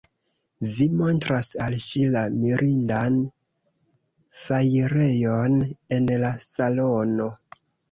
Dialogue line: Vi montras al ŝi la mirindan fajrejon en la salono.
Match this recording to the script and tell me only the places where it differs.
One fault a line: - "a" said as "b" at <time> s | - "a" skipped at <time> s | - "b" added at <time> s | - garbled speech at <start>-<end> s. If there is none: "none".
none